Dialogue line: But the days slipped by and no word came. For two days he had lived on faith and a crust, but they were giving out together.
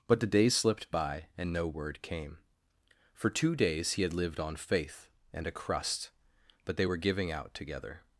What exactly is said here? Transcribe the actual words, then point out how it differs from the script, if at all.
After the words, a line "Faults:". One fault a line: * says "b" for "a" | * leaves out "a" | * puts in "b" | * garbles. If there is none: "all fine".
But the days slipped by and no word came. For two days he had lived on faith and a crust, but they were giving out together.
Faults:
all fine